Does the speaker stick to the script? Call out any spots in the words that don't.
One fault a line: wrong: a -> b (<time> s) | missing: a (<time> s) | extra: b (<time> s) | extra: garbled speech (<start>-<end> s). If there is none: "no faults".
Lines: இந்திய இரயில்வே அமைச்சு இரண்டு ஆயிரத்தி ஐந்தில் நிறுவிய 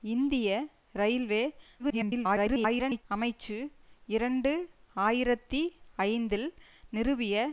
extra: garbled speech (1.8-3.0 s)